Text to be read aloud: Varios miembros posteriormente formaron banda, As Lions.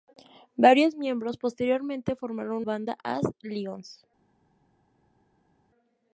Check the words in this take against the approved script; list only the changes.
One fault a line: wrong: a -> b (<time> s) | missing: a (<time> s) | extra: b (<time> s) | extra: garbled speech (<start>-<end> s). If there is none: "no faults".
no faults